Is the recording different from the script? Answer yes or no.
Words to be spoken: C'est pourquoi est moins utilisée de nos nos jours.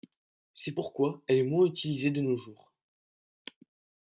yes